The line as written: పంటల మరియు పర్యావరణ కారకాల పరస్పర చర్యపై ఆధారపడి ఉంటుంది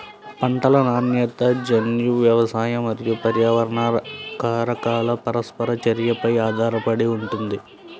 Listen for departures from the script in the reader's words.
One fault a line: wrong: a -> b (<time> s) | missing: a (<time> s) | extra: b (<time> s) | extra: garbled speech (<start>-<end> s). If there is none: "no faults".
extra: నాణ్యత జన్యు వ్యవసాయ (0.8 s)